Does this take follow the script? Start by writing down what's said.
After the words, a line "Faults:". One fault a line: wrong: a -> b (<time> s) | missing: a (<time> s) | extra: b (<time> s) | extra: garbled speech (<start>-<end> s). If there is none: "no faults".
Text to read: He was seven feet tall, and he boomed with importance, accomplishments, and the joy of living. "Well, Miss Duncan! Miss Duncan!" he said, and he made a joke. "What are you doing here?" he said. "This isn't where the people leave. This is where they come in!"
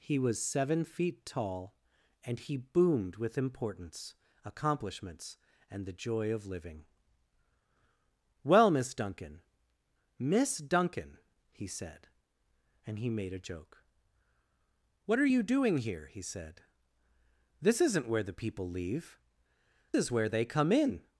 He was seven feet tall, and he boomed with importance, accomplishments, and the joy of living. "Well, Miss Duncan! Miss Duncan!" he said, and he made a joke. "What are you doing here?" he said. "This isn't where the people leave. Is where they come in!"
Faults:
missing: This (19.2 s)